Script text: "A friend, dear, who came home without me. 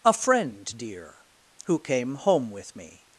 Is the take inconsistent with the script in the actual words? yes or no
yes